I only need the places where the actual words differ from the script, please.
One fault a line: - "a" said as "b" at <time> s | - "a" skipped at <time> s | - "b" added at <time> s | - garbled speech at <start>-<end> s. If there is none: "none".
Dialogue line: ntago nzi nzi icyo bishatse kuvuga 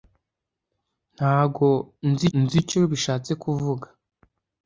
none